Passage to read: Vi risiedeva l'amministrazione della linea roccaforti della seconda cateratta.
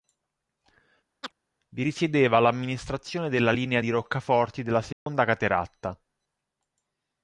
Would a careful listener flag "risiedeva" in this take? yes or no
no